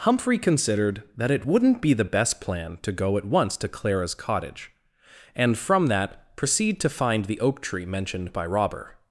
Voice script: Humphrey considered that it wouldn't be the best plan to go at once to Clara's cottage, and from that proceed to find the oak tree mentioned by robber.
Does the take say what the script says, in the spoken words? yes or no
yes